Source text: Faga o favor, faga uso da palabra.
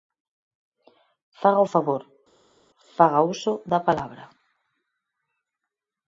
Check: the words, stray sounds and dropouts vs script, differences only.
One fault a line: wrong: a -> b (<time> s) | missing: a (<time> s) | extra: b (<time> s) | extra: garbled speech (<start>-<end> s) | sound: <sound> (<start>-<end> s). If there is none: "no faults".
no faults